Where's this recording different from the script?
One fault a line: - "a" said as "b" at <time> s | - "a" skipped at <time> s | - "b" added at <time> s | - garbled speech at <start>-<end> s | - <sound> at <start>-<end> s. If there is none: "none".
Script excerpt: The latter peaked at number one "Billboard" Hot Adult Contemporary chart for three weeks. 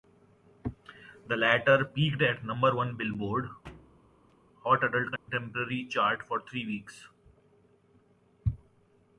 - thud at 3.6-4.4 s
- dropout at 5.2-5.3 s